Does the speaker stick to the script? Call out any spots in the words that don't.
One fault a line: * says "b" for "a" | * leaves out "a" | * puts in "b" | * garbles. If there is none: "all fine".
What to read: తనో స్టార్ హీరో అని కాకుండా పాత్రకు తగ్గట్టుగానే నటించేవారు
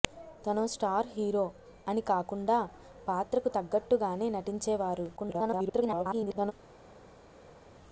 * garbles